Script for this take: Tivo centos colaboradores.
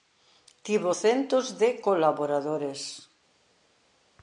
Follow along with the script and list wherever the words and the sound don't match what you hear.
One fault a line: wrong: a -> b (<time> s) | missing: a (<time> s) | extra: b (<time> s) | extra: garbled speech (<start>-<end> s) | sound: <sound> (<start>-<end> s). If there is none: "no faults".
extra: de (1.6 s)